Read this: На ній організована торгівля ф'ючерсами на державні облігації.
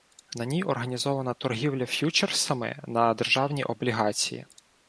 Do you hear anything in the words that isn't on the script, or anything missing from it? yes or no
no